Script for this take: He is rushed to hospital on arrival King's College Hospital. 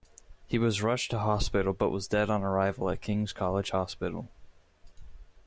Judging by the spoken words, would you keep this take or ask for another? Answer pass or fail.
fail